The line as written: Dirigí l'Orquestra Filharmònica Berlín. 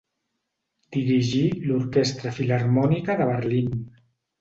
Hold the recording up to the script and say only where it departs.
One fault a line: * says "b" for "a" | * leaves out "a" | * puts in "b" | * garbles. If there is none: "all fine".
* puts in "de"